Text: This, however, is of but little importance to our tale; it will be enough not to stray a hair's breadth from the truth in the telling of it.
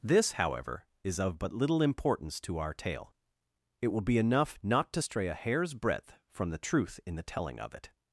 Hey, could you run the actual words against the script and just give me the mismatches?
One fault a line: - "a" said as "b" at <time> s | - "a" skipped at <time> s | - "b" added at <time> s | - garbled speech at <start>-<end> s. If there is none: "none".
none